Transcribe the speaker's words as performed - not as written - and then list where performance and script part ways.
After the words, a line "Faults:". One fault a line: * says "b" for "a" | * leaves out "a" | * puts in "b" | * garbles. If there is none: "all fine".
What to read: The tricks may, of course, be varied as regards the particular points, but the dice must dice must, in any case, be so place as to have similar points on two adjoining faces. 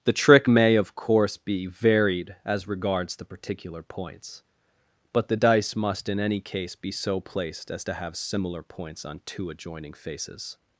The trick may, of course, be varied as regards the particular points, but the dice must, in any case, be so placed as to have similar points on two adjoining faces.
Faults:
* says "trick" for "tricks"
* leaves out "dice must"
* says "placed" for "place"